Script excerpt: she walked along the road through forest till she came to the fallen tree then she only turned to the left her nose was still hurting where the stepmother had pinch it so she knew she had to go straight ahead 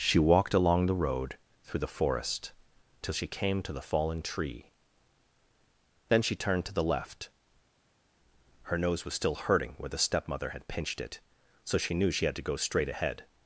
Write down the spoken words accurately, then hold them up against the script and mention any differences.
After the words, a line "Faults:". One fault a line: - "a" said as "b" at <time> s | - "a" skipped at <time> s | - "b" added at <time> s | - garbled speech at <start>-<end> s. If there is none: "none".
she walked along the road through the forest till she came to the fallen tree then she turned to the left her nose was still hurting where the stepmother had pinched it so she knew she had to go straight ahead
Faults:
- "the" added at 1.8 s
- "only" skipped at 6.4 s
- "pinch" said as "pinched" at 10.7 s